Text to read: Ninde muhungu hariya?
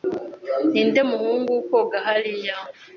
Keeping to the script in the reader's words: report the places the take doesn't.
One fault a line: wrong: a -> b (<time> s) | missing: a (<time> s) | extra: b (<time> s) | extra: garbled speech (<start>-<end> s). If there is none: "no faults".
extra: koga (1.7 s)